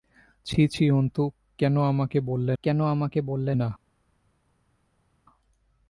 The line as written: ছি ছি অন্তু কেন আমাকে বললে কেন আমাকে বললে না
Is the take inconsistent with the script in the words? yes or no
no